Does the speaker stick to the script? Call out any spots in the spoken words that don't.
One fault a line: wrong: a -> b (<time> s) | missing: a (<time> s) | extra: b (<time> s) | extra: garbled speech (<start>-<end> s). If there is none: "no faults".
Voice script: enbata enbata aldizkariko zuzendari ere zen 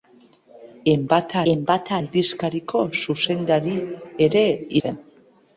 no faults